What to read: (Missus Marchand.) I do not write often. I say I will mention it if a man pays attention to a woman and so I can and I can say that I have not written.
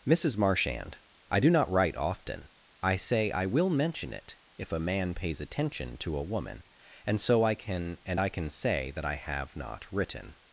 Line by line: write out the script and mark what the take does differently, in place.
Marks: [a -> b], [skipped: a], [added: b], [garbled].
(Missus Marchand.) I do not write often. I say I will mention it if a man pays attention to a woman and so I can and I can say that I have not written.